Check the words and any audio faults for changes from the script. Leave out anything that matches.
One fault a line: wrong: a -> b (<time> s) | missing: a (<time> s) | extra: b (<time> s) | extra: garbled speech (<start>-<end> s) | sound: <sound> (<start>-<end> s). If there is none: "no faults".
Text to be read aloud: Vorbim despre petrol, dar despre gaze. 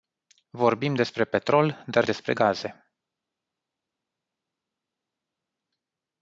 no faults